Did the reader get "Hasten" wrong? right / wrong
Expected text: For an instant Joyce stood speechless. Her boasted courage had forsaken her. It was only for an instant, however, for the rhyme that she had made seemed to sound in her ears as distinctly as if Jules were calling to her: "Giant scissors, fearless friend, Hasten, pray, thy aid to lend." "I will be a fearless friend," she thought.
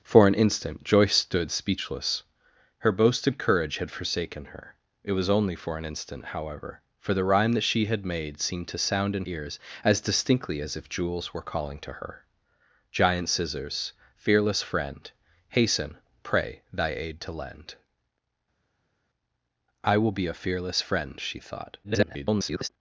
right